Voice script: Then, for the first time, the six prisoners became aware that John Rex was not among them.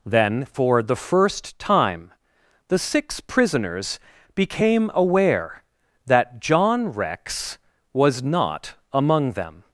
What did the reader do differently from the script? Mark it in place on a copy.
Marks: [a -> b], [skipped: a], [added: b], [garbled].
Then, for the first time, the six prisoners became aware that John Rex was not among them.